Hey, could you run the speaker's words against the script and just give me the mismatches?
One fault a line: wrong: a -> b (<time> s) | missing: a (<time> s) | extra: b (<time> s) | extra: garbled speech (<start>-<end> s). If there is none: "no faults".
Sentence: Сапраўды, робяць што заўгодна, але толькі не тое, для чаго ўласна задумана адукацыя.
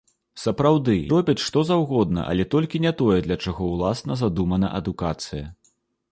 no faults